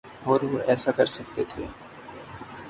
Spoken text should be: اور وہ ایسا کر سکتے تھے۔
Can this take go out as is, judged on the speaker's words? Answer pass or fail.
pass